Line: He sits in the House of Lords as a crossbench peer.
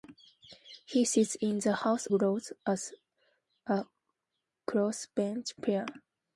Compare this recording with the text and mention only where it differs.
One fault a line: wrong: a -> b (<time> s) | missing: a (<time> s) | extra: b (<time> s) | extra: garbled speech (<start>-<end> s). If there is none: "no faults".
missing: of (2.1 s)